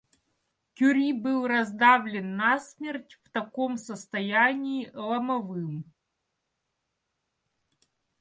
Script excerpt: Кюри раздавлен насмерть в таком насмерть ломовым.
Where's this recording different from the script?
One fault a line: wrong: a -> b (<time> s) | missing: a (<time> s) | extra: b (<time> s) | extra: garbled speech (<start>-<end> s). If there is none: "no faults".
extra: был (1.1 s)
wrong: насмерть -> состоянии (3.8 s)